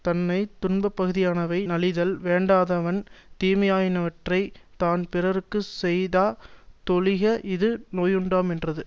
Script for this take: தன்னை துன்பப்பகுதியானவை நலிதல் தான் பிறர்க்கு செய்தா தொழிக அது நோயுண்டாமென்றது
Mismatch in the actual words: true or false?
true